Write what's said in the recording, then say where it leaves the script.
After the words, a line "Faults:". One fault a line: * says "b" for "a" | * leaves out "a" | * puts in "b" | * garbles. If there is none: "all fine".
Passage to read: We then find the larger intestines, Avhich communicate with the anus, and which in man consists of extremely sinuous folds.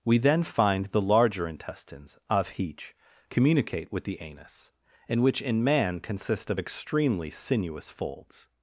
We then find the larger intestines, Avhich communicate with the anus, and which in man consist of extremely sinuous folds.
Faults:
* says "consist" for "consists"